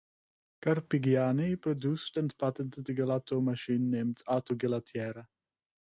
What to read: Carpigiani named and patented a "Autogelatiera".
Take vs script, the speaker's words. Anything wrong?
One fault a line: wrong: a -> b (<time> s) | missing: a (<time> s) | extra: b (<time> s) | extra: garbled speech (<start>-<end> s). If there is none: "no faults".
wrong: named -> produced (1.6 s)
extra: gelato machine named (2.9 s)